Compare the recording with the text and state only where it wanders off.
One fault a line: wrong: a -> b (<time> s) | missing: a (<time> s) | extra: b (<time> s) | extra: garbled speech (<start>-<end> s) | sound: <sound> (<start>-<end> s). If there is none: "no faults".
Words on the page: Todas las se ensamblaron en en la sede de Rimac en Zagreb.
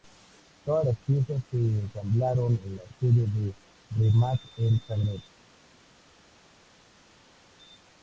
extra: piezas (1.1 s)
missing: en (2.8 s)